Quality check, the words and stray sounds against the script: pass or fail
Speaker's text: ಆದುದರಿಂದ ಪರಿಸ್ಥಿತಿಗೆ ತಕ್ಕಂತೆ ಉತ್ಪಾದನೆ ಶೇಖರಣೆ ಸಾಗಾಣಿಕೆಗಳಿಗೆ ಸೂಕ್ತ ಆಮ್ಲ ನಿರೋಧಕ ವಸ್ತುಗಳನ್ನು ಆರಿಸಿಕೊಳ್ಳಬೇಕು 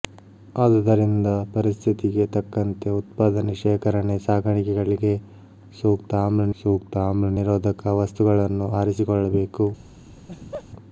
fail